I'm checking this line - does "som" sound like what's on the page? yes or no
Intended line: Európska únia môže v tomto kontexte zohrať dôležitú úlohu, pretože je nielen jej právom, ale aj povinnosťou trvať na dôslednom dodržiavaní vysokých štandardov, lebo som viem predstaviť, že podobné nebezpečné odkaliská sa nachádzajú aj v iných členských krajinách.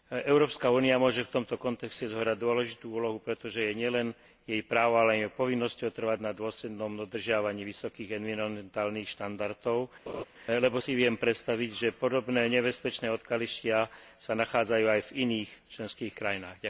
no